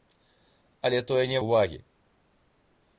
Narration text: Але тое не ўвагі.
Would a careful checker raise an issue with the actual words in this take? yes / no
no